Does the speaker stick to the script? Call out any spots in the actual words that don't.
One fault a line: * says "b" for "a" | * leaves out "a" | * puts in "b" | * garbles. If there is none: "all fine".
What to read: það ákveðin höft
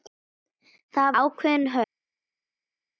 all fine